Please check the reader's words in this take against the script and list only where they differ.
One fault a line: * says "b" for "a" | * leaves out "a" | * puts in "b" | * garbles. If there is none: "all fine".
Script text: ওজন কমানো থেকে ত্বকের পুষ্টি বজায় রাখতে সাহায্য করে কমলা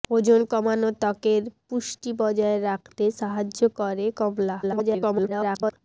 * leaves out "থেকে"
* garbles